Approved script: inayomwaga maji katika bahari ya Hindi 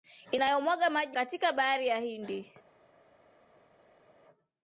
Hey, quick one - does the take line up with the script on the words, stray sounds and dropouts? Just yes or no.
yes